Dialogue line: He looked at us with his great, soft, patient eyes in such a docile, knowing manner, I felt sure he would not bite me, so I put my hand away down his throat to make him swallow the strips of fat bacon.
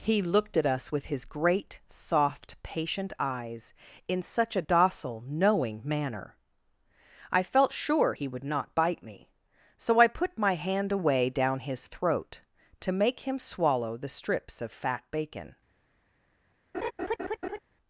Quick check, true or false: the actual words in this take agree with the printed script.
true